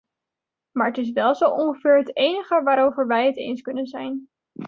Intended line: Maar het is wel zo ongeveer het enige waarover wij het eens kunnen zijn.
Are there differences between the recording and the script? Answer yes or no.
no